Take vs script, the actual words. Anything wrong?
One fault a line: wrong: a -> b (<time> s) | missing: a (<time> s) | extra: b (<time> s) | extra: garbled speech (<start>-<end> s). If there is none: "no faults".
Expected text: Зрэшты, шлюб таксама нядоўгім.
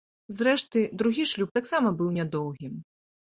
extra: другі (1.0 s)
extra: быў (2.0 s)